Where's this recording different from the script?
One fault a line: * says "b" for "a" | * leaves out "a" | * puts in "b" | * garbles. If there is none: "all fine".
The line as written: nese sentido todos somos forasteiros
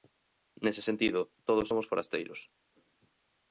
all fine